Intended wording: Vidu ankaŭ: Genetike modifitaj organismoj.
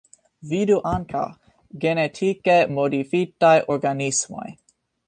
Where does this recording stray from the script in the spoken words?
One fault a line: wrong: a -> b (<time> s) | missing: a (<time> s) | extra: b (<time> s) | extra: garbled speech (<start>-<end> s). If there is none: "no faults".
no faults